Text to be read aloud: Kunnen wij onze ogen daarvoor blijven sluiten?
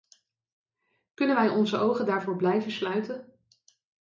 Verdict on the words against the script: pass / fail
pass